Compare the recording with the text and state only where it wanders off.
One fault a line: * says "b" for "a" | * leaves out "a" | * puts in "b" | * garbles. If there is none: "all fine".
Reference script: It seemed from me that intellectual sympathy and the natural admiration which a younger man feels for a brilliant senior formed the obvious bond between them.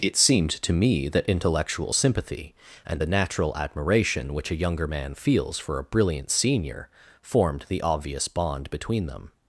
* says "to" for "from"